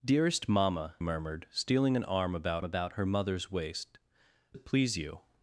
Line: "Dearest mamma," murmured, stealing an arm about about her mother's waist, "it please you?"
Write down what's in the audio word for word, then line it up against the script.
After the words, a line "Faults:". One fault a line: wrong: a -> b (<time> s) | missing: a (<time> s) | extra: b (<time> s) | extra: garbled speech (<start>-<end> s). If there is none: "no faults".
"Dearest mamma," murmured, stealing an arm about about her mother's waist, "it please you?"
Faults:
no faults